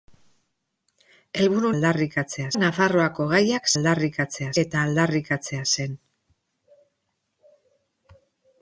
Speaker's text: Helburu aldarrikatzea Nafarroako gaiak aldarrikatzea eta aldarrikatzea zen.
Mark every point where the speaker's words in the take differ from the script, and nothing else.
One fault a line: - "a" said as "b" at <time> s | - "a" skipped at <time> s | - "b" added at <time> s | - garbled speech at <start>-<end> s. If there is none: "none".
none